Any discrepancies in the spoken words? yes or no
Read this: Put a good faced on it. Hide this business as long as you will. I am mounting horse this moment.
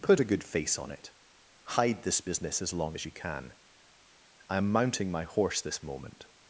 yes